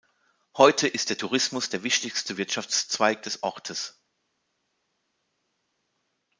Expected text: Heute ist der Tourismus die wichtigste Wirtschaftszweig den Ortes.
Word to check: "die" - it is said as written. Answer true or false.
false